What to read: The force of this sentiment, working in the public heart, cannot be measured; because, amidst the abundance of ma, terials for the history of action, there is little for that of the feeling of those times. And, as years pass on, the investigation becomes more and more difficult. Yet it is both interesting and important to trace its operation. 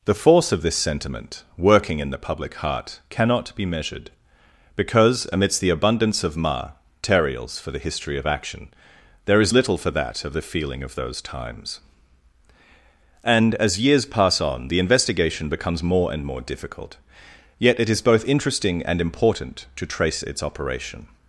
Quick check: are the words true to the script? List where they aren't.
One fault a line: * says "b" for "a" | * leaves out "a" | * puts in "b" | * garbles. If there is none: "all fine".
all fine